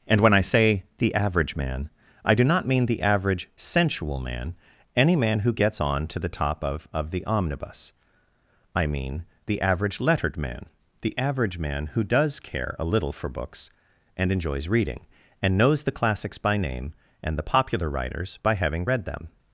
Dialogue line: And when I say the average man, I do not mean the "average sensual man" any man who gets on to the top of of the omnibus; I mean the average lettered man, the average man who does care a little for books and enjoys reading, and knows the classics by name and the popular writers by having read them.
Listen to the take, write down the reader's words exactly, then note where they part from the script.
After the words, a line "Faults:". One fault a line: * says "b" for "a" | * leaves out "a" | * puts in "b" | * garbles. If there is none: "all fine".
And when I say the average man, I do not mean the "average sensual man" any man who gets on to the top of of the omnibus; I mean the average lettered man, the average man who does care a little for books and enjoys reading, and knows the classics by name and the popular writers by having read them.
Faults:
all fine